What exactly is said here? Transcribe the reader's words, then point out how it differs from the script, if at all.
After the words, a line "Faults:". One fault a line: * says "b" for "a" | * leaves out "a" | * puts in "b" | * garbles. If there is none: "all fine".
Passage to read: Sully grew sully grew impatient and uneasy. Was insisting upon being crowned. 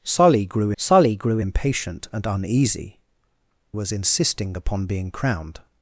Sully grew sully grew impatient and uneasy. Was insisting upon being crowned.
Faults:
all fine